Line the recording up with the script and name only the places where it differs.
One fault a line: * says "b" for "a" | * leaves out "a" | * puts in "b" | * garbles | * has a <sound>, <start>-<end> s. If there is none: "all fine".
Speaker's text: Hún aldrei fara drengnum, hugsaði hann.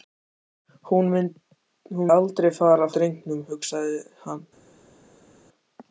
all fine